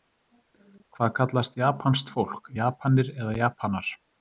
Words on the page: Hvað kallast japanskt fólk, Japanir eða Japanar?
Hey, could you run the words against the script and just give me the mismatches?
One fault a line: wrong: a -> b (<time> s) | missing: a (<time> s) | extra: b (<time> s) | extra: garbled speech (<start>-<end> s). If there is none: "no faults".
no faults